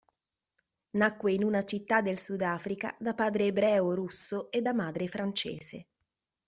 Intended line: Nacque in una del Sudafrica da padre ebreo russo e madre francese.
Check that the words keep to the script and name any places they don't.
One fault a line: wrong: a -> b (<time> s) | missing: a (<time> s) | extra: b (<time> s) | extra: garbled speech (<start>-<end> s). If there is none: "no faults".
extra: città (1.6 s)
extra: da (4.6 s)